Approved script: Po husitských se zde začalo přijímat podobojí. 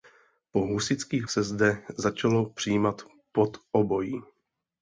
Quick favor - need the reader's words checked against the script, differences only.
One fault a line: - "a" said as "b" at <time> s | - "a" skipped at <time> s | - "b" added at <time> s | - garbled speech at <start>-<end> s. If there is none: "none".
none